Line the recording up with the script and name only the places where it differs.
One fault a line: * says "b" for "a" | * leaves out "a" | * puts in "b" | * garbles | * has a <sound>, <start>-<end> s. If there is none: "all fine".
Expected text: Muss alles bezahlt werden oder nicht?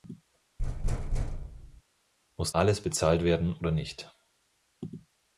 * has a thud, 0.6-1.8 s